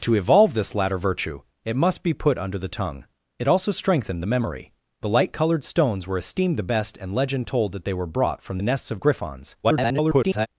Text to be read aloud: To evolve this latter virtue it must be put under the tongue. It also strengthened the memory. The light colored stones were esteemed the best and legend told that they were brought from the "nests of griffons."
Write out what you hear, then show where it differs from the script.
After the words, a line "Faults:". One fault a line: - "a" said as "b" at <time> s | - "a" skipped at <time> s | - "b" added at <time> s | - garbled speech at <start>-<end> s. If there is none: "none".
To evolve this latter virtue it must be put under the tongue. It also strengthened the memory. The light colored stones were esteemed the best and legend told that they were brought from the "nests of griffons." [garbled]
Faults:
- garbled speech at 9.6-10.5 s